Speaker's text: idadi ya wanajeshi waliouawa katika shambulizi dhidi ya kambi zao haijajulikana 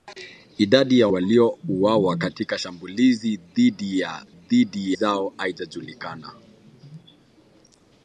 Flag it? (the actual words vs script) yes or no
yes